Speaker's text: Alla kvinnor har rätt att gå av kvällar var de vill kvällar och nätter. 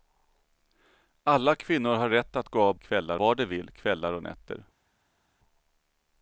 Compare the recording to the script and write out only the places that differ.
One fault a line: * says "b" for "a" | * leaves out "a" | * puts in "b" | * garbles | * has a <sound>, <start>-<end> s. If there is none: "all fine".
all fine